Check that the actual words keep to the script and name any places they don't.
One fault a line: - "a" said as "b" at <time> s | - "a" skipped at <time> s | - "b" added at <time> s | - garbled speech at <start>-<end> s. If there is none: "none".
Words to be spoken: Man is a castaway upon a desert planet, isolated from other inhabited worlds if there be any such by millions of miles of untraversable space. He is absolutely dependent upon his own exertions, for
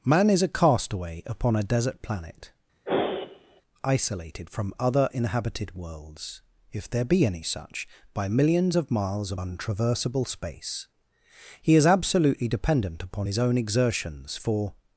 none